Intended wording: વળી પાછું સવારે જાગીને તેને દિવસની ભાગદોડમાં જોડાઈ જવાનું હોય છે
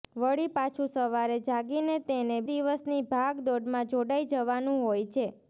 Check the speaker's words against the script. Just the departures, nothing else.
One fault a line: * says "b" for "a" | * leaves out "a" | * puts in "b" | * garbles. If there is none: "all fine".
all fine